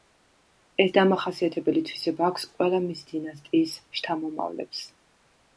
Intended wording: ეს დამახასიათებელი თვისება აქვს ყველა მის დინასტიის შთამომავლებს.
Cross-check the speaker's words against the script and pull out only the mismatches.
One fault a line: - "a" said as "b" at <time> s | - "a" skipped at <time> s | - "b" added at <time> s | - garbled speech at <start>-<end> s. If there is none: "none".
none